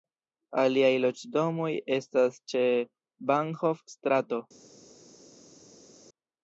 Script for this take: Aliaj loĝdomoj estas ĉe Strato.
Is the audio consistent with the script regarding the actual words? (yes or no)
no